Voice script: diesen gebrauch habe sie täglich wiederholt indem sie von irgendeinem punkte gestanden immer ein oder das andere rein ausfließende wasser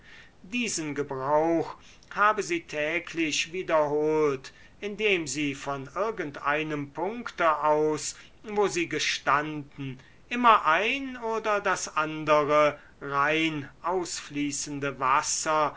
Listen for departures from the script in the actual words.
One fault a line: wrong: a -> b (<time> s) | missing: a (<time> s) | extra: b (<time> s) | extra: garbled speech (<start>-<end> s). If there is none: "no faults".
extra: aus wo sie (7.6 s)